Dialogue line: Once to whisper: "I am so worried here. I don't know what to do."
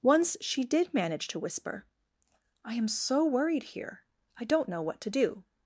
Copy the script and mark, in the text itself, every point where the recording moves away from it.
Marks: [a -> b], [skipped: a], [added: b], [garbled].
Once [added: she did manage] to whisper: "I am so worried here. I don't know what to do."